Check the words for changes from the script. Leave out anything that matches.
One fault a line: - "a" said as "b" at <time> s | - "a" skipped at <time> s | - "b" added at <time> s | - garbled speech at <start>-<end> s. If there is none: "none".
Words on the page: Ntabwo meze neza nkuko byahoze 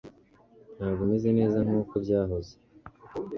none